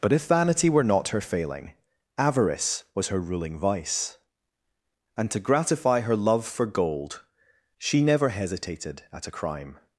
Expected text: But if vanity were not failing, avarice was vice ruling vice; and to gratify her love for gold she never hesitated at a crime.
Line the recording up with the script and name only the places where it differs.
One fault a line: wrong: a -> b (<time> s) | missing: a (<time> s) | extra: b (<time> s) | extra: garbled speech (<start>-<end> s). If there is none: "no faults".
extra: her (1.1 s)
wrong: vice -> her (3.1 s)